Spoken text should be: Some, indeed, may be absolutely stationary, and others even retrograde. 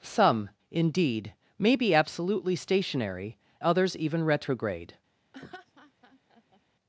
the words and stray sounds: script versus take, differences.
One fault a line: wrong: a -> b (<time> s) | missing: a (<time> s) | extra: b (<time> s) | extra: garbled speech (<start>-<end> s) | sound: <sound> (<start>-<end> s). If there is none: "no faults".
missing: and (3.4 s)
sound: laugh (5.3-6.6 s)